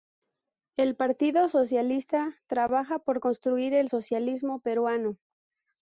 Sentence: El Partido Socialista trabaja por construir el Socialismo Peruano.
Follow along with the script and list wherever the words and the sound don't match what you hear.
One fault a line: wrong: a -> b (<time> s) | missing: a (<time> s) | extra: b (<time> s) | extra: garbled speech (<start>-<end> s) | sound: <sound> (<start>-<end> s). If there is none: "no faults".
no faults